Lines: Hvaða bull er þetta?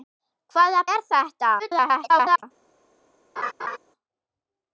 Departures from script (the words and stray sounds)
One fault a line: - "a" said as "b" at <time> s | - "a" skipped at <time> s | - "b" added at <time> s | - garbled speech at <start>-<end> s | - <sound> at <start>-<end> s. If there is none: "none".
- "bull" skipped at 0.8 s
- garbled speech at 1.6-2.4 s
- laugh at 3.4-3.8 s